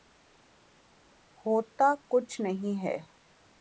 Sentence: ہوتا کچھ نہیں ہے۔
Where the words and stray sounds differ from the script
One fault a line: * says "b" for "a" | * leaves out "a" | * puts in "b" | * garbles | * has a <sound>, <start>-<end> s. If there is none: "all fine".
all fine